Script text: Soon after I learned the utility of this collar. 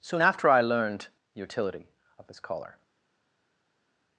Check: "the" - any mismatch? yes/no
no